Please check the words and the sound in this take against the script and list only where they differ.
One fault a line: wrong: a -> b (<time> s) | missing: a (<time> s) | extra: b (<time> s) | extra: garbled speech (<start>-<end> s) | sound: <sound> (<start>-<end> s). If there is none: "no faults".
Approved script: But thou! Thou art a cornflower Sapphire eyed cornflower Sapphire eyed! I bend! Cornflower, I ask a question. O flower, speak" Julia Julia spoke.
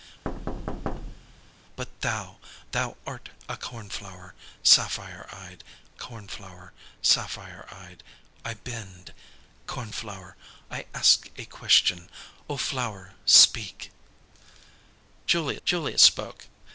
sound: thud (0.2-1.5 s)